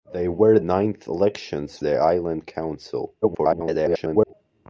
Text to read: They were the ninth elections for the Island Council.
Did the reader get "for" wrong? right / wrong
wrong